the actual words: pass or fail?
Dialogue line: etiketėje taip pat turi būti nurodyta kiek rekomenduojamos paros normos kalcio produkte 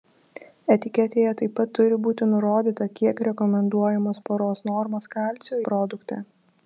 pass